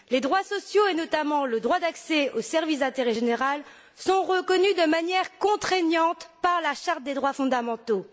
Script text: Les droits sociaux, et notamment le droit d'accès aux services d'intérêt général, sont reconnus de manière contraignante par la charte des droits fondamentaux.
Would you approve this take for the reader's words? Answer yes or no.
yes